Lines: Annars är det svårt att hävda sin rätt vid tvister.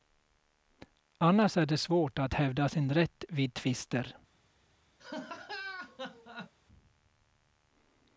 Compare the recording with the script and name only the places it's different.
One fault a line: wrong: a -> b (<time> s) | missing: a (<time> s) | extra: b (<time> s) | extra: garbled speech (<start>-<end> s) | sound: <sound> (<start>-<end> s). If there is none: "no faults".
sound: laugh (5.0-6.5 s)